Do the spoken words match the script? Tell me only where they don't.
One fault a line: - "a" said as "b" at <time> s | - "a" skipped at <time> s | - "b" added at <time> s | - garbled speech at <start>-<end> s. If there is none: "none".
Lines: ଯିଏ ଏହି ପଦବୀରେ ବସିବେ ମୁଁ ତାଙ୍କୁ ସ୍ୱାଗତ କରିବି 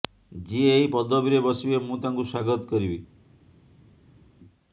none